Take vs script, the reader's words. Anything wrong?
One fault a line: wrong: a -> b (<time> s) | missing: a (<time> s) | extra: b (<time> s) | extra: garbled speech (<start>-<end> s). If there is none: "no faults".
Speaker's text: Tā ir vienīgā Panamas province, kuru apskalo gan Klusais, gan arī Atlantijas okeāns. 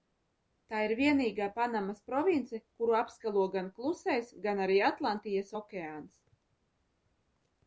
no faults